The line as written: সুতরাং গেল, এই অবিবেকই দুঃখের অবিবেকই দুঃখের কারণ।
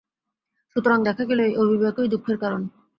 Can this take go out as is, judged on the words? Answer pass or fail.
fail